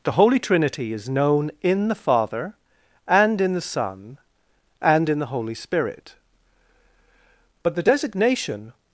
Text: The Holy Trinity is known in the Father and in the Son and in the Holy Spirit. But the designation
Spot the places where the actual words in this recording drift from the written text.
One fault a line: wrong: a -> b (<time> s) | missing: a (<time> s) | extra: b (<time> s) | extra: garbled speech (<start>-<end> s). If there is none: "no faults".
no faults